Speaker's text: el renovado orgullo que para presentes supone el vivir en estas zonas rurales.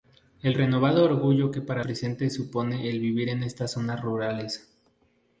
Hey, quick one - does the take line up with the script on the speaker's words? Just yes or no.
yes